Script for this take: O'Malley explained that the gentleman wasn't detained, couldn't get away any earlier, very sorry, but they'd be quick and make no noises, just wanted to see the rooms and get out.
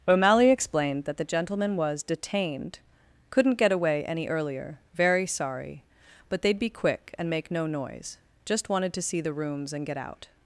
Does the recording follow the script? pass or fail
fail